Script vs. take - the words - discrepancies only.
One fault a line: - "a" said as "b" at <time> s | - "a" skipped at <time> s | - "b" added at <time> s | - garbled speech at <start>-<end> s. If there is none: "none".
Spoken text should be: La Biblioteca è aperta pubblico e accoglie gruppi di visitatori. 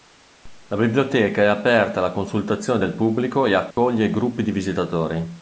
- "alla consultazione del" added at 2.0 s